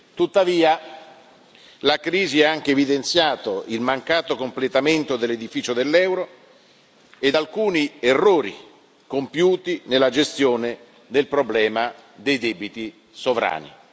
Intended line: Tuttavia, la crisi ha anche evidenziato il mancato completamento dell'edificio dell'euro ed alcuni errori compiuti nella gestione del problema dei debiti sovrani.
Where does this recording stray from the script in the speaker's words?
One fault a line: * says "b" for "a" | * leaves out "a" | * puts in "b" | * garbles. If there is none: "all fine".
all fine